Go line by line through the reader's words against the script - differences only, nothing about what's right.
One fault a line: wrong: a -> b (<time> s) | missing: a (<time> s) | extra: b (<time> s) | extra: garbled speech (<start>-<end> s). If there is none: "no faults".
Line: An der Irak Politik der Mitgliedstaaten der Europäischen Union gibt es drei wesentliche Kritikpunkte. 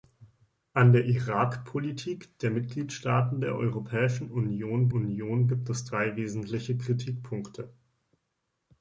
extra: Union (4.9 s)